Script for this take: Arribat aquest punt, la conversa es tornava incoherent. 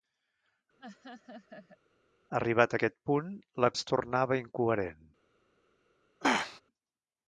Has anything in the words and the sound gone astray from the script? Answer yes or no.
yes